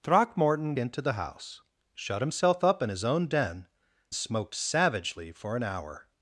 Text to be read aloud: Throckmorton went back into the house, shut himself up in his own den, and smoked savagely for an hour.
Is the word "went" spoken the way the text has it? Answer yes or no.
no